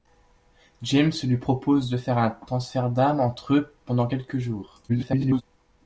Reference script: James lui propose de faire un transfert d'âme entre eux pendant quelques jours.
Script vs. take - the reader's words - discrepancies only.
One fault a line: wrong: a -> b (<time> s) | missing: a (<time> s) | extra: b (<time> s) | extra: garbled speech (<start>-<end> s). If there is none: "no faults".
extra: garbled speech (4.9-5.4 s)